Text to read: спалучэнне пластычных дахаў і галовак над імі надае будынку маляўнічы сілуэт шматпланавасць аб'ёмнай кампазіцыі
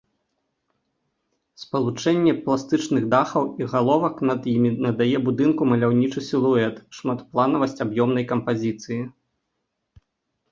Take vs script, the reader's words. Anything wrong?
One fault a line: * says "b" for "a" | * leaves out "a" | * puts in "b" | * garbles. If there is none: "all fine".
all fine